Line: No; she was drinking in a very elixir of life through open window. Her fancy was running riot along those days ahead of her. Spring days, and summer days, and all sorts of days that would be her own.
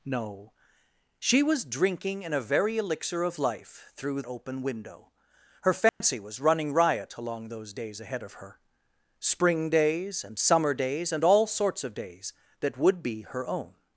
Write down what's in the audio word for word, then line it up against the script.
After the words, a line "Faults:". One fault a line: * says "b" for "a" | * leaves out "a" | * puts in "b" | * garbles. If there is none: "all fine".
No; she was drinking in a very elixir of life through open window. Her fancy was running riot along those days ahead of her. Spring days, and summer days, and all sorts of days that would be her own.
Faults:
all fine